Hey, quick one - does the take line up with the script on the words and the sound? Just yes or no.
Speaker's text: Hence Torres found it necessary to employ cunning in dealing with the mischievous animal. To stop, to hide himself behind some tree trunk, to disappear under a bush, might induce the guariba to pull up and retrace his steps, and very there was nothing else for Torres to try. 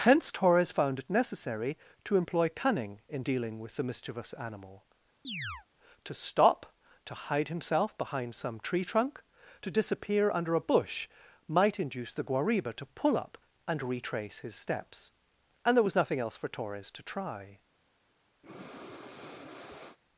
no